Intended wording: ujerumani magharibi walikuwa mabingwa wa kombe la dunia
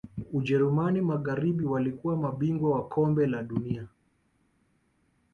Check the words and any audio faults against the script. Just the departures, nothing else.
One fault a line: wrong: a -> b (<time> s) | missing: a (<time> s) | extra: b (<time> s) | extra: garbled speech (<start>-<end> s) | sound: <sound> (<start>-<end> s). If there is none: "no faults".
no faults